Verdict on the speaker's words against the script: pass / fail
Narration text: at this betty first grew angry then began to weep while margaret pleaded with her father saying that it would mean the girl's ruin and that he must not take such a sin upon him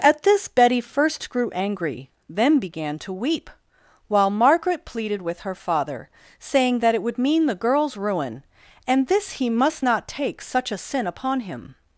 fail